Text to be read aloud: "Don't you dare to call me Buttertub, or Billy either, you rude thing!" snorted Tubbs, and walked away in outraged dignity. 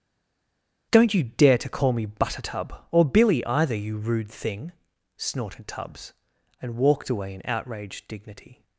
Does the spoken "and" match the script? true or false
true